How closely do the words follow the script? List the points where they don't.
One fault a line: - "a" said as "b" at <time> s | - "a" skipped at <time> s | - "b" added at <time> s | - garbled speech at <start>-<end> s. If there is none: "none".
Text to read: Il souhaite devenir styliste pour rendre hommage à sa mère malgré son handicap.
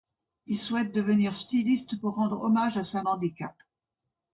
- "mère malgré son" skipped at 3.0 s